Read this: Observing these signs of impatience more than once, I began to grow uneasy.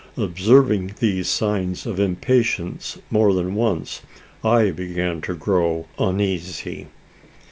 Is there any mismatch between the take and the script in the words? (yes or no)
no